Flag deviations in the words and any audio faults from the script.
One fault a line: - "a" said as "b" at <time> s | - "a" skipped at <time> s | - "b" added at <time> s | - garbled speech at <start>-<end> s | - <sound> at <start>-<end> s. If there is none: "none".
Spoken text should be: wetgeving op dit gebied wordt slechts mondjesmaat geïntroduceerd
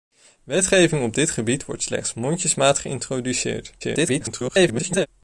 - garbled speech at 3.8-5.1 s